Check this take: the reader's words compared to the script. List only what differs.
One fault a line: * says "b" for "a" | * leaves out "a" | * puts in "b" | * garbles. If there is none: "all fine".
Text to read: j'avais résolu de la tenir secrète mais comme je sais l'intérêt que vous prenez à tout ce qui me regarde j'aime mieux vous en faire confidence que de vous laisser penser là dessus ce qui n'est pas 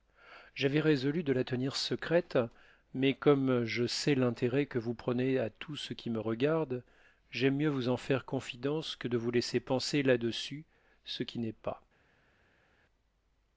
all fine